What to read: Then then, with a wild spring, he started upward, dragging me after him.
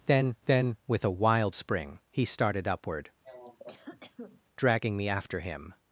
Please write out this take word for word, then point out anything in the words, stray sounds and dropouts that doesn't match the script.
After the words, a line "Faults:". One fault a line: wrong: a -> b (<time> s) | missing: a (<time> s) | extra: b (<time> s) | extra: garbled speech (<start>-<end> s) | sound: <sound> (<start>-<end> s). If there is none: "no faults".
Then then, with a wild spring, he started upward, dragging me after him.
Faults:
sound: cough (3.2-4.4 s)